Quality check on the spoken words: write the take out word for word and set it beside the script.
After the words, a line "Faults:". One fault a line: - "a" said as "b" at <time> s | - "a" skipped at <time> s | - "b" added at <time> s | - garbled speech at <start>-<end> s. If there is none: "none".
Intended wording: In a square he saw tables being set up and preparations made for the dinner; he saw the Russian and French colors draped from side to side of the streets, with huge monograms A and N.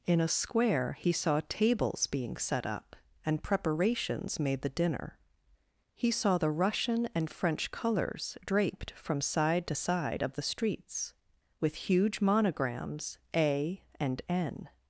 In a square he saw tables being set up and preparations made the dinner; he saw the Russian and French colors draped from side to side of the streets, with huge monograms A and N.
Faults:
- "for" skipped at 4.6 s